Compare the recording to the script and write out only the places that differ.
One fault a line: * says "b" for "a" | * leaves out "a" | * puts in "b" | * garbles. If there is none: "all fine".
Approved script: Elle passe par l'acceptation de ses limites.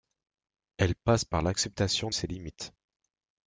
* leaves out "de"